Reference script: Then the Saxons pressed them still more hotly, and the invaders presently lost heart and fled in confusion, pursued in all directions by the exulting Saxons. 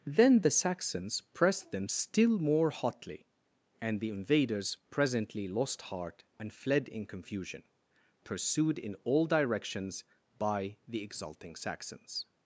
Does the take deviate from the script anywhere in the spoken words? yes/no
no